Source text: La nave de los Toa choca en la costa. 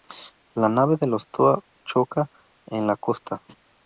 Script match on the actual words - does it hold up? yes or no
yes